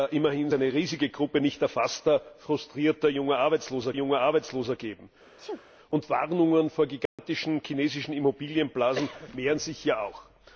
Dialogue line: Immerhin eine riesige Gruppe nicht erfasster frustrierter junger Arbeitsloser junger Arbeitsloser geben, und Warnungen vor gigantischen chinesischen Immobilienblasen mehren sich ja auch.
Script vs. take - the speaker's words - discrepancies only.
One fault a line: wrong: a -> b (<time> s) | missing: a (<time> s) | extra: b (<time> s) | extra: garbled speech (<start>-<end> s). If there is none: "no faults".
no faults